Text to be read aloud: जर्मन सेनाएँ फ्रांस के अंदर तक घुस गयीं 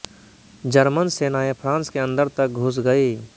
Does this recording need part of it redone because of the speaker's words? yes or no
no